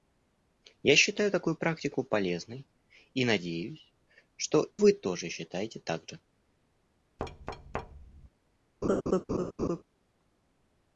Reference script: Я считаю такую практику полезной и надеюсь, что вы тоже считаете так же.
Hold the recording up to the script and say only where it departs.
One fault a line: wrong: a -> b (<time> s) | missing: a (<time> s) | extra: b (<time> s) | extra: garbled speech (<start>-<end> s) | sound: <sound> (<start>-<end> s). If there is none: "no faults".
sound: thud (7.2-8.3 s)
sound: laugh (8.8-9.8 s)